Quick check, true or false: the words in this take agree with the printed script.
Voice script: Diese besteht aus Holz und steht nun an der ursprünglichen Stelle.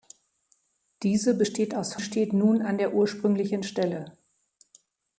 false